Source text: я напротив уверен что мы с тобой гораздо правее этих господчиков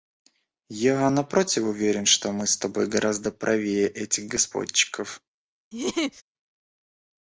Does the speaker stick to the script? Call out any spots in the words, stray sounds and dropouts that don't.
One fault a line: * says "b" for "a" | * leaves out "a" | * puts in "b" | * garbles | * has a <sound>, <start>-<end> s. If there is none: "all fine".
* has a laugh, 5.7-6.2 s